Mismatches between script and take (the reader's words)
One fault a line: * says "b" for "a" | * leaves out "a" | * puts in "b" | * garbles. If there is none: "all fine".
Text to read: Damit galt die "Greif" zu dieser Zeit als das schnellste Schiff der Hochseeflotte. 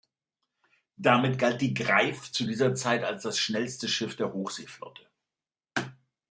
all fine